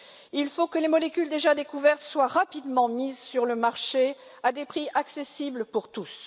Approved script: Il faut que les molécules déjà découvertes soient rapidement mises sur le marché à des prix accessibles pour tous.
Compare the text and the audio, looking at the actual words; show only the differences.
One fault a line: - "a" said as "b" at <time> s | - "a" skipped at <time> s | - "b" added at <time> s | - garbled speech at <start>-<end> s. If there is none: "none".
none